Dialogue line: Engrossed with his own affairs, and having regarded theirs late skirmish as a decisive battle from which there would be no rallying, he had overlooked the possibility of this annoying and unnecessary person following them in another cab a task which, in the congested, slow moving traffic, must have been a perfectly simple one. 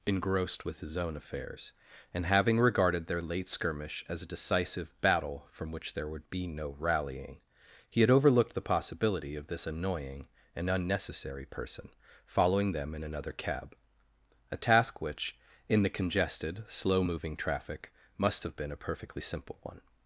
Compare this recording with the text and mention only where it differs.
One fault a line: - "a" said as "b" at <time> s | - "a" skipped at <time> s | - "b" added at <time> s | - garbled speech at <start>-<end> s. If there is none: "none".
- "theirs" said as "their" at 3.0 s